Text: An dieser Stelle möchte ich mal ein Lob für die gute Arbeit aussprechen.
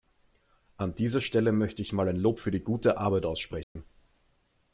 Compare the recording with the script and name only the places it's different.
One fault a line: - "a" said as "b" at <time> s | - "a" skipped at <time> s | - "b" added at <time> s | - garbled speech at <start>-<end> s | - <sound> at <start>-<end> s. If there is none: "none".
- dropout at 3.6-3.8 s